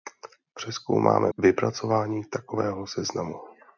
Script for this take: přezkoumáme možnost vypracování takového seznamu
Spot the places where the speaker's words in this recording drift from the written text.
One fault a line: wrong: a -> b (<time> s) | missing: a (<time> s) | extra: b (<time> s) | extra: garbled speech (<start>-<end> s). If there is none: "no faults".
missing: možnost (1.3 s)